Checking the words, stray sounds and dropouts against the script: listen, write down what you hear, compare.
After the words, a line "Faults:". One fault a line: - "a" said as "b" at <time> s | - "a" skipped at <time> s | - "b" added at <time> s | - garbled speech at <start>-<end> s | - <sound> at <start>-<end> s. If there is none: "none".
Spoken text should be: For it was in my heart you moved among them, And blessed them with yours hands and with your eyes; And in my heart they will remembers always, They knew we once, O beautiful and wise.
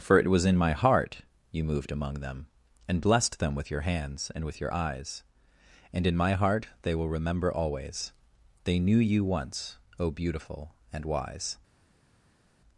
For it was in my heart you moved among them, And blessed them with your hands and with your eyes; And in my heart they will remember always, They knew you once, O beautiful and wise.
Faults:
- "yours" said as "your" at 3.7 s
- "remembers" said as "remember" at 7.1 s
- "we" said as "you" at 9.0 s